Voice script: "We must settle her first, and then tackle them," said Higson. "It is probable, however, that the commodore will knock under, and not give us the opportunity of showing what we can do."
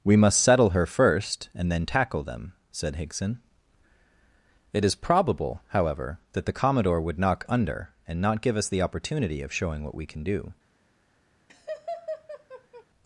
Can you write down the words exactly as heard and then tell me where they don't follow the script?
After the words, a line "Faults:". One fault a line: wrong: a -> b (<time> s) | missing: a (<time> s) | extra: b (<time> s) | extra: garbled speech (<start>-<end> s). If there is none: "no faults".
"We must settle her first, and then tackle them," said Higson. "It is probable, however, that the commodore would knock under, and not give us the opportunity of showing what we can do."
Faults:
wrong: will -> would (7.0 s)